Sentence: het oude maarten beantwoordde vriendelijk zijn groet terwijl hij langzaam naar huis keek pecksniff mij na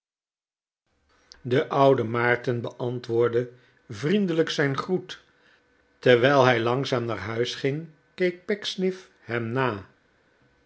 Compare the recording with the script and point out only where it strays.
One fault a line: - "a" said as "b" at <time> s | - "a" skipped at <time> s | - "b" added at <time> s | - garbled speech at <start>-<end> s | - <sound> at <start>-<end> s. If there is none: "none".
- "het" said as "de" at 1.4 s
- "ging" added at 7.5 s
- "mij" said as "hem" at 9.2 s